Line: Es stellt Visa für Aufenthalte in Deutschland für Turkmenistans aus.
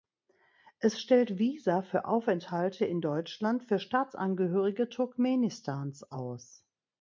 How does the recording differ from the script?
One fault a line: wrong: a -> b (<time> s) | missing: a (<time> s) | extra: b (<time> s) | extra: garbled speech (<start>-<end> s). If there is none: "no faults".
extra: Staatsangehörige (3.8 s)